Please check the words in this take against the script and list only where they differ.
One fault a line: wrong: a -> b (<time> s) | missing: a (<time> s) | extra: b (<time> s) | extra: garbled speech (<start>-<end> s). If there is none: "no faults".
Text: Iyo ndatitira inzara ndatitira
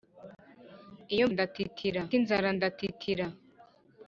no faults